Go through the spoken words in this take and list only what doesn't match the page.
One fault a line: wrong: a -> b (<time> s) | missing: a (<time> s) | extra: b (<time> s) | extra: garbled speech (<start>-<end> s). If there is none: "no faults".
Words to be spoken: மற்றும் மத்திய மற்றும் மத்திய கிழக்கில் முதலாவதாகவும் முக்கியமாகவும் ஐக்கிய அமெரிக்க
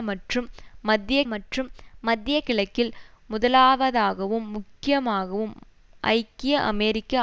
no faults